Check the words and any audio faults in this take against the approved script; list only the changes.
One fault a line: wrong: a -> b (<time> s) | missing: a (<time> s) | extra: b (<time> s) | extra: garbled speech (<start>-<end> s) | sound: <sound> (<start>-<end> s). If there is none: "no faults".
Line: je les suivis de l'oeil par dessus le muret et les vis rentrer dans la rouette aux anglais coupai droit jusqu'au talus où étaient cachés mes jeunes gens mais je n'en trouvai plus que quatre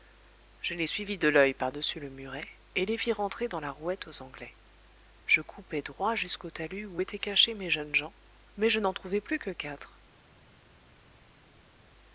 extra: je (5.2 s)